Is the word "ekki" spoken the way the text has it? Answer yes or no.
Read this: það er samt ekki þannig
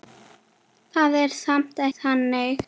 no